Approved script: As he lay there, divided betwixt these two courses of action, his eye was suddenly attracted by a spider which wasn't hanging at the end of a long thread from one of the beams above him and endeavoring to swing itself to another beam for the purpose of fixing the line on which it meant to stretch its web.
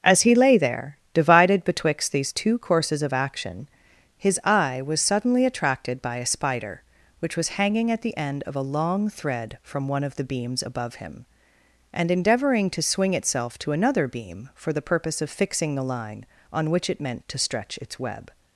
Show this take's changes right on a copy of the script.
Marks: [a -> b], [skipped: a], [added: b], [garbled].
As he lay there, divided betwixt these two courses of action, his eye was suddenly attracted by a spider which [wasn't -> was] hanging at the end of a long thread from one of the beams above him and endeavoring to swing itself to another beam for the purpose of fixing the line on which it meant to stretch its web.